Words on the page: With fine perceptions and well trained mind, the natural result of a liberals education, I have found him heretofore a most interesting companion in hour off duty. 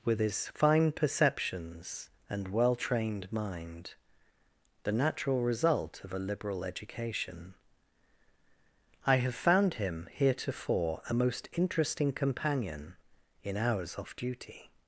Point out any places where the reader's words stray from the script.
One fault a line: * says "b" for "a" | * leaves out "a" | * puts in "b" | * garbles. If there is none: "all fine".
* puts in "his"
* says "liberal" for "liberals"
* says "hours" for "hour"